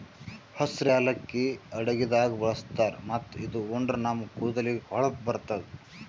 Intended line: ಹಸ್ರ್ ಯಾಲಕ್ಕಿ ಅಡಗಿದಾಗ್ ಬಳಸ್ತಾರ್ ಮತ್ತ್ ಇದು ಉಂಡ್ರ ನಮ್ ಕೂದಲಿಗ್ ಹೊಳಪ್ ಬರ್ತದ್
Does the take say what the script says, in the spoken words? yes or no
yes